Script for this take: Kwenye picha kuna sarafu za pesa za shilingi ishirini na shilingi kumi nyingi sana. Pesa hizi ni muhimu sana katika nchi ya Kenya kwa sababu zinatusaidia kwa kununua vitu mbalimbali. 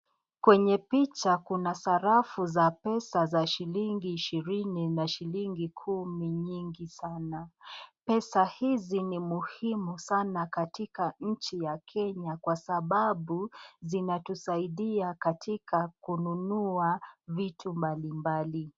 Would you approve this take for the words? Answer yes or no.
no